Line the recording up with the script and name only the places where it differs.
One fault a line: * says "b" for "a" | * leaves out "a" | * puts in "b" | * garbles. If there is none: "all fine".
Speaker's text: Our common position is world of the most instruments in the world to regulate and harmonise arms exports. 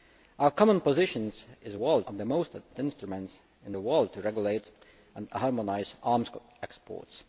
all fine